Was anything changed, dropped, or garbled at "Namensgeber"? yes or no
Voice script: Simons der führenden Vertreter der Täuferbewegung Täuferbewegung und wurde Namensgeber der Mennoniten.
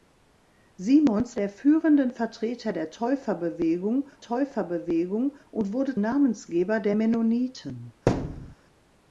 no